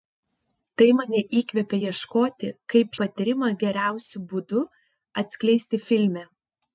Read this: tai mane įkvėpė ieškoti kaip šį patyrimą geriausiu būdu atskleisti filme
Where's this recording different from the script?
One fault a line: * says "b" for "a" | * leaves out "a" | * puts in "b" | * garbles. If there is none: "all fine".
* leaves out "šį"